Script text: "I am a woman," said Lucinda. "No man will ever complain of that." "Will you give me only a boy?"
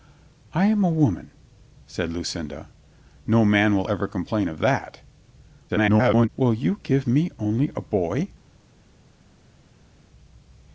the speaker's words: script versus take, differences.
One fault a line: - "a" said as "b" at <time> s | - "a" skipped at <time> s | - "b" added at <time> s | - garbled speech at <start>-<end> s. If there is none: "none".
- garbled speech at 5.7-6.3 s